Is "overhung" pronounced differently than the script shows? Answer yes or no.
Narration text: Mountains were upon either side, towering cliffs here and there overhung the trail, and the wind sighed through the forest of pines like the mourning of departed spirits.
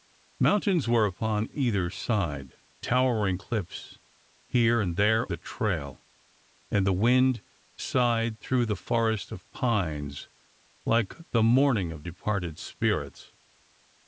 yes